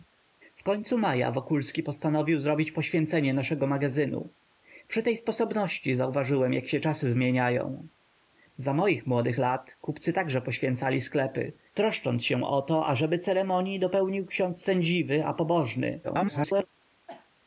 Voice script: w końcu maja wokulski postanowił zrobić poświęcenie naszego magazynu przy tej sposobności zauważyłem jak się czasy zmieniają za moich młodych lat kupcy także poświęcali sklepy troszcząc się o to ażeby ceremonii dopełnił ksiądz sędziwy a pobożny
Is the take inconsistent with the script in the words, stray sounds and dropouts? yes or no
yes